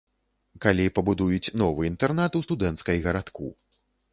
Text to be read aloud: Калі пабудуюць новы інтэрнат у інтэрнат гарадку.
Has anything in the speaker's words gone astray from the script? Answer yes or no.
yes